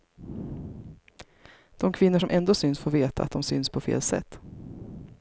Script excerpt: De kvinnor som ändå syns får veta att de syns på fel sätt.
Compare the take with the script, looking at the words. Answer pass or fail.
pass